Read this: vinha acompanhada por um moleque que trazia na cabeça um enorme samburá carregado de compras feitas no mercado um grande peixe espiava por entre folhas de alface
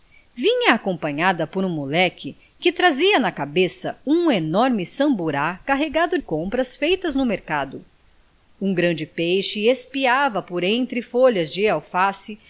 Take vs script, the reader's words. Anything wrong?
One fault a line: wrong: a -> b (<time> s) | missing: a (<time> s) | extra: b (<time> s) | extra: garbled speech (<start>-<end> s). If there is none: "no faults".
missing: de (6.2 s)